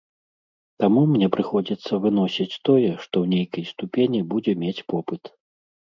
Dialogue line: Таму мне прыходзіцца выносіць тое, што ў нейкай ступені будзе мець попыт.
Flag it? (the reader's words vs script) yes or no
no